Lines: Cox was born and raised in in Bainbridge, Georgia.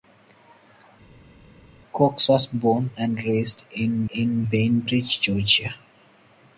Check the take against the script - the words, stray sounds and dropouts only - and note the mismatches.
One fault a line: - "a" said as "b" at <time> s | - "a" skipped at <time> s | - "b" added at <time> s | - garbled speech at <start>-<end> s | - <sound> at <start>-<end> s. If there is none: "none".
none